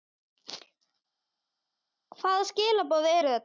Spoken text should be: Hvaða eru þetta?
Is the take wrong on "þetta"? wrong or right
right